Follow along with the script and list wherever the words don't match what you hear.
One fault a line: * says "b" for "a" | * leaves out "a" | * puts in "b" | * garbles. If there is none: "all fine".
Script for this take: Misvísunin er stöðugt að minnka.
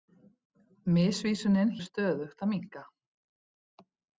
all fine